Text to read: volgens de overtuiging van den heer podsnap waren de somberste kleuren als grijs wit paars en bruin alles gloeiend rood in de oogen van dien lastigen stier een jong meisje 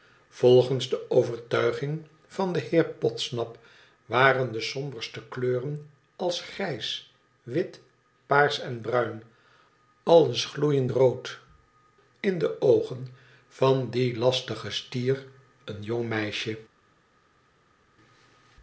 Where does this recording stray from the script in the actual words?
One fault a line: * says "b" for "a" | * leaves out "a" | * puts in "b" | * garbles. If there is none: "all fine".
all fine